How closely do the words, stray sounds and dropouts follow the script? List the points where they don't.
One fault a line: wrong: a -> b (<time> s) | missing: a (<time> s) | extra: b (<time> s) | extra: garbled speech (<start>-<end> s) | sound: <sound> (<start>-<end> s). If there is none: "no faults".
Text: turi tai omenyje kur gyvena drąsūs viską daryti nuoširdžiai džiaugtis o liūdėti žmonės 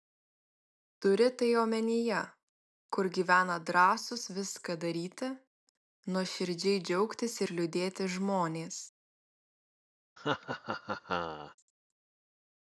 wrong: o -> ir (7.5 s)
sound: laugh (10.2-11.6 s)